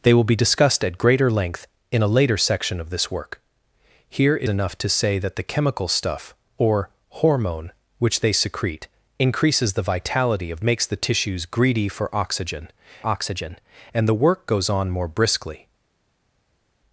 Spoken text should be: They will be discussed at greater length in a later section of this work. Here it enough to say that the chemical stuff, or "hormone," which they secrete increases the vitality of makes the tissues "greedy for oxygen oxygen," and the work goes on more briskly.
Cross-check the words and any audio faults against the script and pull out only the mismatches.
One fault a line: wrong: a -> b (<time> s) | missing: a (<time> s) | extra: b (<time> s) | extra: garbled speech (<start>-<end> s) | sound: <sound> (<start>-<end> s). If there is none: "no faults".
no faults